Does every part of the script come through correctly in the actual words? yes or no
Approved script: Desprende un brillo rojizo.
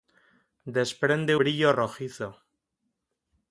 no